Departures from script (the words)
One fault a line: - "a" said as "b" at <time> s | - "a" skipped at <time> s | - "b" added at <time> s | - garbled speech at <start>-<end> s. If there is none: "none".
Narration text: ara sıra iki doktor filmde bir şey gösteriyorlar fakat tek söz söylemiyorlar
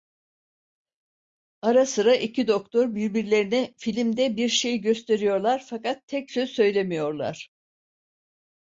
- "birbirlerine" added at 3.0 s